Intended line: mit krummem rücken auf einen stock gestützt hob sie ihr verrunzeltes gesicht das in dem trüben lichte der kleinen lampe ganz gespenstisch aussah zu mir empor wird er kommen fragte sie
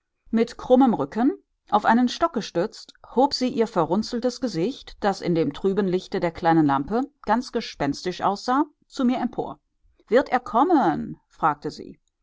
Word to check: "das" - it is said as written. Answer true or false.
true